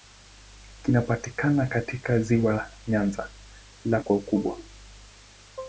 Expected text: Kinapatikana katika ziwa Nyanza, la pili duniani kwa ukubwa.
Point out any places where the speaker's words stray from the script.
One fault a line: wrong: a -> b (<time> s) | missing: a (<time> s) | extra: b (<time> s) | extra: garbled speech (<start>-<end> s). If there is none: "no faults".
missing: pili duniani (4.0 s)